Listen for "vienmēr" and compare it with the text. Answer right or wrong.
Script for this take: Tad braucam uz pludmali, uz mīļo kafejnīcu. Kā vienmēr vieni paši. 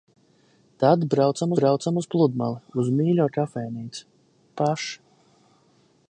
wrong